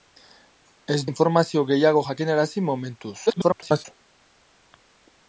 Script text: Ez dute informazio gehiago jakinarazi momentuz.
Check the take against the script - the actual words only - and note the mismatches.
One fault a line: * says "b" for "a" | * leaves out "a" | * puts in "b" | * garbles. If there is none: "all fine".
* leaves out "dute"
* garbles